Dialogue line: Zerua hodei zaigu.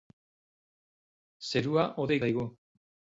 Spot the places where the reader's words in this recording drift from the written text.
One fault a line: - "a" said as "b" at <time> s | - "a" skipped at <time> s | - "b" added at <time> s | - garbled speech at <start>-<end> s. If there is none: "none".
none